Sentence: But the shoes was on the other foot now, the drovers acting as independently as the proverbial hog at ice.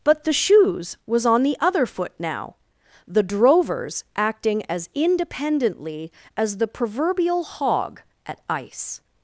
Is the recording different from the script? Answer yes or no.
no